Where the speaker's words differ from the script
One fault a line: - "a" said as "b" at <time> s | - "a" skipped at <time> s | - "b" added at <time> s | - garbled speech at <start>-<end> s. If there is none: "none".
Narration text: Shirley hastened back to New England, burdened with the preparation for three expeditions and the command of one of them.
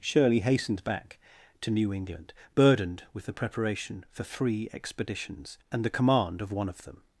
none